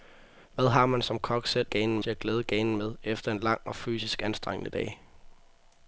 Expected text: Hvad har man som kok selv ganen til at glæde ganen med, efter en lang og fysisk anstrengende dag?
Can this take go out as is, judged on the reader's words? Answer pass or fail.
pass